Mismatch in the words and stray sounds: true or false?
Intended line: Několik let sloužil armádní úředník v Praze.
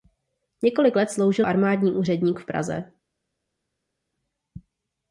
false